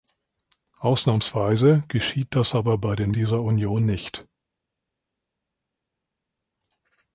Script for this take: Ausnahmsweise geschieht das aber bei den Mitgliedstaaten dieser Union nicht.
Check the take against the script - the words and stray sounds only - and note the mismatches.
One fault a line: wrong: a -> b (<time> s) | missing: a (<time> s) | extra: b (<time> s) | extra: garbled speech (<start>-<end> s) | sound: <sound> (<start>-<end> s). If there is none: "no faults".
missing: Mitgliedstaaten (3.1 s)